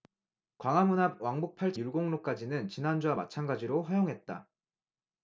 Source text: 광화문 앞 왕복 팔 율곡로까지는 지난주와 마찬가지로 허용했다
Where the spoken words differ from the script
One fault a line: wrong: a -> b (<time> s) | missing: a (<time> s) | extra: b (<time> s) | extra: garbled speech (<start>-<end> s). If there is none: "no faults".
no faults